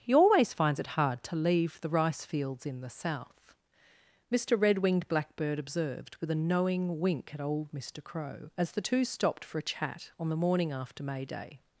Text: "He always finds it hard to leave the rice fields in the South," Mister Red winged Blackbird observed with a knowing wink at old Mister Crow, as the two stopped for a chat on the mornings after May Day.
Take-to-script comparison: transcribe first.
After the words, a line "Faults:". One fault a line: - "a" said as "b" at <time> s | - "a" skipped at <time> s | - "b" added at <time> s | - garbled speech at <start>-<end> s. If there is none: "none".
"He always finds it hard to leave the rice fields in the South," Mister Red winged Blackbird observed with a knowing wink at old Mister Crow, as the two stopped for a chat on the morning after May Day.
Faults:
- "mornings" said as "morning" at 10.4 s